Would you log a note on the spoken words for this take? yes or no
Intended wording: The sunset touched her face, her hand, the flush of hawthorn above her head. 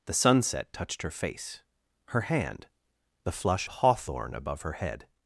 yes